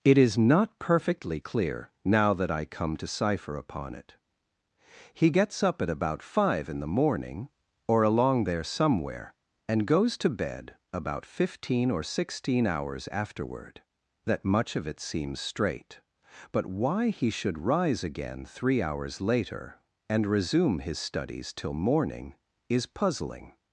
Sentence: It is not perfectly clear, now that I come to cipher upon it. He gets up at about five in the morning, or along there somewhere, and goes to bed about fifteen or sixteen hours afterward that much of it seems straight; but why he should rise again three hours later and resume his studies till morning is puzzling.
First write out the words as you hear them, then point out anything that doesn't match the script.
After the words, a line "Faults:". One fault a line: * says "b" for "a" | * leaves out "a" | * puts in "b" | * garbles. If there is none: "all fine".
It is not perfectly clear, now that I come to cipher upon it. He gets up at about five in the morning, or along there somewhere, and goes to bed about fifteen or sixteen hours afterward that much of it seems straight; but why he should rise again three hours later and resume his studies till morning is puzzling.
Faults:
all fine